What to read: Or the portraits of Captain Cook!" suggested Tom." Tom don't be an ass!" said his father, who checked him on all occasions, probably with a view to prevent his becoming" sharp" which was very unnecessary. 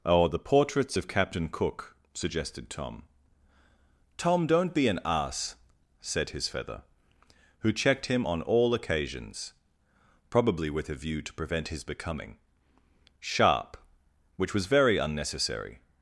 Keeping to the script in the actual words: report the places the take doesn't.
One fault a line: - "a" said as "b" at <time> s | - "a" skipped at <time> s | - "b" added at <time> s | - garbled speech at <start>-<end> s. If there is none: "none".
- "father" said as "feather" at 6.5 s